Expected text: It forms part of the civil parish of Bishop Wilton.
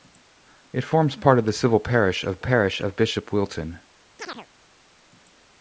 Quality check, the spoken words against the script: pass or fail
fail